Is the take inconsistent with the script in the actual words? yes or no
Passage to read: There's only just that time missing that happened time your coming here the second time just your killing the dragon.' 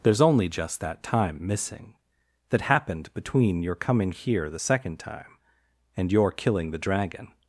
yes